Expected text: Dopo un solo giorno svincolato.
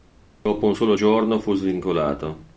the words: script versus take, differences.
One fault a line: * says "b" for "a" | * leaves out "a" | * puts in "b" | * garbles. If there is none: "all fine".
* puts in "fu"